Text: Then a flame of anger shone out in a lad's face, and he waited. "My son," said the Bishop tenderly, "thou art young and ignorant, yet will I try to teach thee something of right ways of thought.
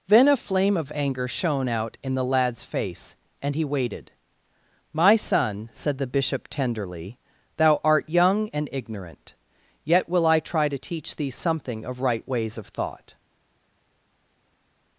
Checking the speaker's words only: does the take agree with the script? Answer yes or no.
no